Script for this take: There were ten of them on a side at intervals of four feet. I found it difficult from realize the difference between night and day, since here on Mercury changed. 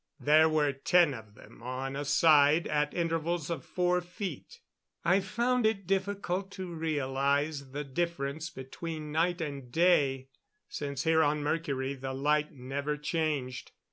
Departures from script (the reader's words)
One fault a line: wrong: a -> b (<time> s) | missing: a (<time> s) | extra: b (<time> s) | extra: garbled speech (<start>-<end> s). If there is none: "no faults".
wrong: from -> to (6.5 s)
extra: the light never (11.9 s)